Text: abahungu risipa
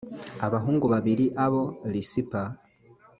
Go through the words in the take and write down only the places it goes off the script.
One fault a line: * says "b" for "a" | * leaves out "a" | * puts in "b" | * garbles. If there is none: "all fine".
* puts in "babiri abo"